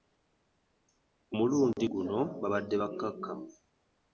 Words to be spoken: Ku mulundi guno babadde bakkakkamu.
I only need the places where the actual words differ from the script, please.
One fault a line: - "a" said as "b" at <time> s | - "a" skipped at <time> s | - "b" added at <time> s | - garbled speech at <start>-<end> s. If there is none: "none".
none